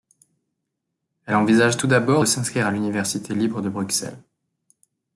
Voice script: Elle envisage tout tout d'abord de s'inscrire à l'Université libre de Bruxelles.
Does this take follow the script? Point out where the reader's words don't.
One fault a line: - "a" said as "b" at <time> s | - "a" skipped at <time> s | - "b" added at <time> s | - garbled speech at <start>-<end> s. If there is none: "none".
- "tout" skipped at 1.9 s